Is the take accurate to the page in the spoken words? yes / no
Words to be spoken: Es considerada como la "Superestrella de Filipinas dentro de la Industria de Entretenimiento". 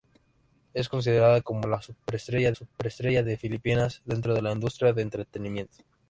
no